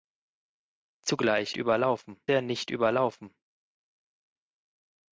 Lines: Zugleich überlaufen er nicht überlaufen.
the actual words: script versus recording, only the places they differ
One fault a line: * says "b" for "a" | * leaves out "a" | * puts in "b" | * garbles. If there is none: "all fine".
all fine